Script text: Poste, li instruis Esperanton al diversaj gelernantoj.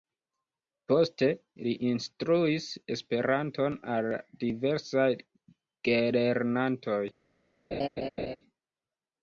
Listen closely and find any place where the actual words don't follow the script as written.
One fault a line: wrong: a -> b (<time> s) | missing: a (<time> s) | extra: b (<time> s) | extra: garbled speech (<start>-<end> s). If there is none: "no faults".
no faults